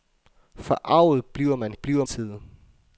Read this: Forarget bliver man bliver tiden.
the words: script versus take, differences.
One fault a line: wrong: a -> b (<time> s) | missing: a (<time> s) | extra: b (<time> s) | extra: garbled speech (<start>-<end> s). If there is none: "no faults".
no faults